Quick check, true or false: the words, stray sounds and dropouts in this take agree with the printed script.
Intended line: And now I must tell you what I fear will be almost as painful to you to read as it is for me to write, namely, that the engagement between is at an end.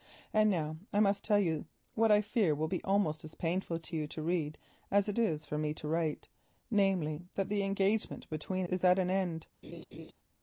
false